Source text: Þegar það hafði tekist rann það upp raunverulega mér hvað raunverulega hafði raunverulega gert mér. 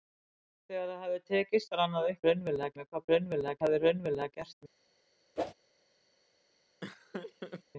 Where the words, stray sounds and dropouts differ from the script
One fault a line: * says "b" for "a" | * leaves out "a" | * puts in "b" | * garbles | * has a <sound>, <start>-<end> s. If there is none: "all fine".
* has a whoosh, 5.4-5.5 s
* has a laugh, 6.8-7.6 s